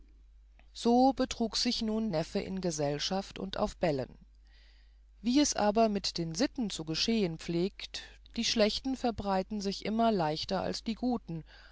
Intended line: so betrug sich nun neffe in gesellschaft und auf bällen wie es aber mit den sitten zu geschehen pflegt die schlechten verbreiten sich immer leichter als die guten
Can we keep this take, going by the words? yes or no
yes